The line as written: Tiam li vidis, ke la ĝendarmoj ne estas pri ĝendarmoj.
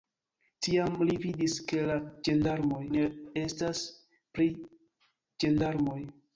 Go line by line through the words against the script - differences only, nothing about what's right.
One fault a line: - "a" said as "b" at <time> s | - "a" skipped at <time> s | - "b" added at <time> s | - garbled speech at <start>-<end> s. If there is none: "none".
none